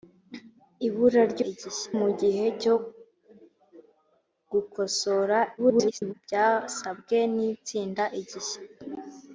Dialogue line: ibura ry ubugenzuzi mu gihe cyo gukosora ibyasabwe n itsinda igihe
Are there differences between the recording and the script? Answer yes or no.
yes